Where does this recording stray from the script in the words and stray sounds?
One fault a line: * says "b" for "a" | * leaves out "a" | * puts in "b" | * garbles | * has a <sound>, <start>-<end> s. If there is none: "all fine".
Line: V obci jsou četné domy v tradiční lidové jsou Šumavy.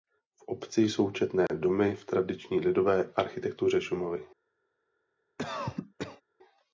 * has a dropout, 1.5-1.5 s
* says "architektuře" for "jsou"
* has a cough, 5.4-6.2 s